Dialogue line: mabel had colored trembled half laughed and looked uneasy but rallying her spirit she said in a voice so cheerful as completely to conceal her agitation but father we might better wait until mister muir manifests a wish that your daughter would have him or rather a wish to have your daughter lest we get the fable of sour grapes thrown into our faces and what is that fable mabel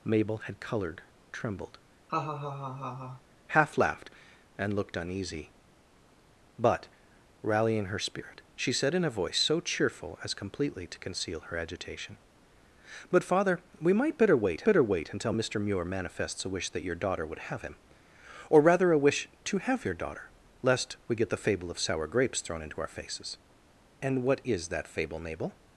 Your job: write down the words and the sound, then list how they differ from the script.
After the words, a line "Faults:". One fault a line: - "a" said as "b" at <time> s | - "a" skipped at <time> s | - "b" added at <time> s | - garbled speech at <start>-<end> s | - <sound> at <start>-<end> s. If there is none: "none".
mabel had colored trembled half laughed and looked uneasy but rallying her spirit she said in a voice so cheerful as completely to conceal her agitation but father we might better wait better wait until mister muir manifests a wish that your daughter would have him or rather a wish to have your daughter lest we get the fable of sour grapes thrown into our faces and what is that fable mabel
Faults:
- laugh at 2.1-3.2 s
- "better wait" added at 14.6 s